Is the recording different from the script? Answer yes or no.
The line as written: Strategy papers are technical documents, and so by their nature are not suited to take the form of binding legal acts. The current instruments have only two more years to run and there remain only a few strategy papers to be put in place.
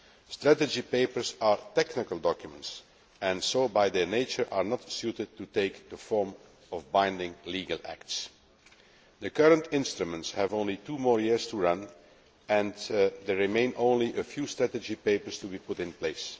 no